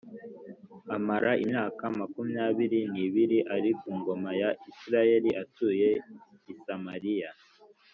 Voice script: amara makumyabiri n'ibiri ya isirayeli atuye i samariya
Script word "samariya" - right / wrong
right